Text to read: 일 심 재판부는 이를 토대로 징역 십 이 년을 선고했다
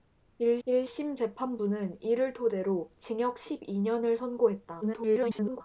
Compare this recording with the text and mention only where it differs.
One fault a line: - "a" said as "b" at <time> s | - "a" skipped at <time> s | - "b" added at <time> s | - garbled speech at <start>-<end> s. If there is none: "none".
- "일" added at 0.7 s
- garbled speech at 4.8-5.6 s